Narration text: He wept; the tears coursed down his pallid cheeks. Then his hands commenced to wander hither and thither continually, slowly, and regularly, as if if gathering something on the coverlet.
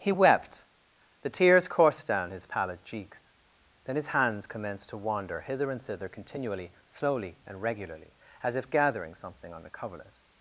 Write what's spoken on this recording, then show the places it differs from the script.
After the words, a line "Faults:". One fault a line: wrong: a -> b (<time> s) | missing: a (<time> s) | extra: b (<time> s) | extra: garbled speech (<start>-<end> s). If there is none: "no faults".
He wept; the tears coursed down his pallid cheeks. Then his hands commenced to wander hither and thither continually, slowly, and regularly, as if gathering something on the coverlet.
Faults:
missing: if (8.7 s)